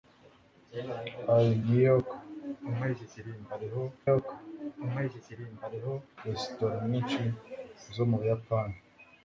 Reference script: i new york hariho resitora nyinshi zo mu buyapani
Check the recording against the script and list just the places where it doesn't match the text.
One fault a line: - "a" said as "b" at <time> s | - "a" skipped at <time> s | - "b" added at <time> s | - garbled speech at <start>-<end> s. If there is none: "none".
- "york hariho" added at 4.1 s